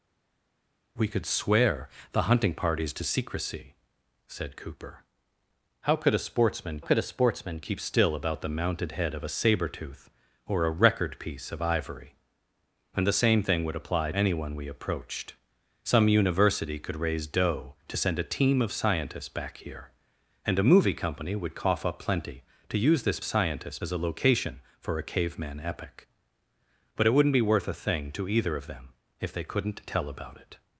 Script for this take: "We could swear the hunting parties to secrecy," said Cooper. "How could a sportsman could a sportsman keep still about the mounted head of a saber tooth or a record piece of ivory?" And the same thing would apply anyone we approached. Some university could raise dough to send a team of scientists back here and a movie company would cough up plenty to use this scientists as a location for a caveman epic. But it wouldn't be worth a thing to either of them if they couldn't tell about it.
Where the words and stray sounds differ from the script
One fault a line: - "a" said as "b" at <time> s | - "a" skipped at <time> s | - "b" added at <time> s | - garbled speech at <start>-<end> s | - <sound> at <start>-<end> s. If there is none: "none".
none